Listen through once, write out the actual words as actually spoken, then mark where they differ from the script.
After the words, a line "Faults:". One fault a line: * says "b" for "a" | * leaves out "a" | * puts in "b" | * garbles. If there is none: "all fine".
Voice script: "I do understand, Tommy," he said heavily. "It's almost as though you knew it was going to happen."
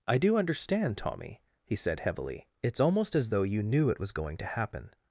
"I do understand, Tommy," he said heavily. "It's almost as though you knew it was going to happen."
Faults:
all fine